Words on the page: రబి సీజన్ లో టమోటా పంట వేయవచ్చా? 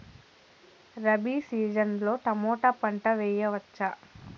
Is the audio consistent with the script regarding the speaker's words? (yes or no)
yes